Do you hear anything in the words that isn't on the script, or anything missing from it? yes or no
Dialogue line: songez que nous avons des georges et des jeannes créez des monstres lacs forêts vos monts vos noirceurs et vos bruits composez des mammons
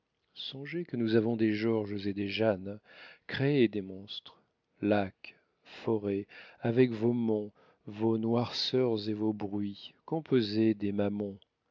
yes